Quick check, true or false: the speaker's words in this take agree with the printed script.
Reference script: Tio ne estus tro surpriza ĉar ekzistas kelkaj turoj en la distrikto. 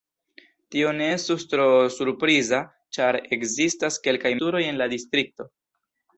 true